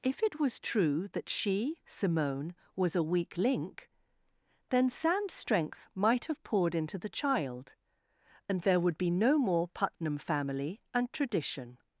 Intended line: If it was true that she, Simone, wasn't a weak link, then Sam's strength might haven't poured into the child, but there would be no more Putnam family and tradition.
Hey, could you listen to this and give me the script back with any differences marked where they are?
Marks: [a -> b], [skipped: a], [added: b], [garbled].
If it was true that she, Simone, [wasn't -> was] a weak link, then Sam's strength might [haven't -> have] poured into the child, [but -> and] there would be no more Putnam family and tradition.